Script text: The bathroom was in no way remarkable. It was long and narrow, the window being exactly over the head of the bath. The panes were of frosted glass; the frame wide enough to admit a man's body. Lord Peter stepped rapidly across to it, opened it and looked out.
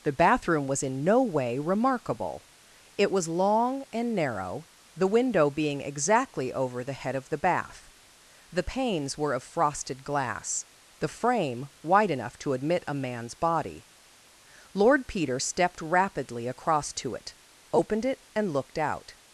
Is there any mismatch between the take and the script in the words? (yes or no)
no